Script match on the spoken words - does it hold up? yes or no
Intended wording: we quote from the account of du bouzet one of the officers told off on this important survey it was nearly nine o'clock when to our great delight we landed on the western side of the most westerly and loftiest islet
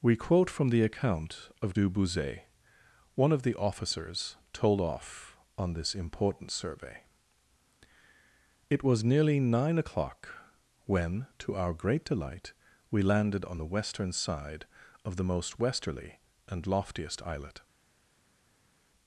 yes